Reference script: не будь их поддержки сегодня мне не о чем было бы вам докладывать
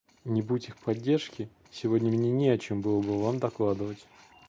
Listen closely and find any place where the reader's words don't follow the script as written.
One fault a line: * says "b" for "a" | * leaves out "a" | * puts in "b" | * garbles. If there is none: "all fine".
all fine